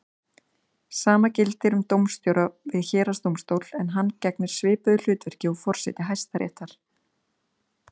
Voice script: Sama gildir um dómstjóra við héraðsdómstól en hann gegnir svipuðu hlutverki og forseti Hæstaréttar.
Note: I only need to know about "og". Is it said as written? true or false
true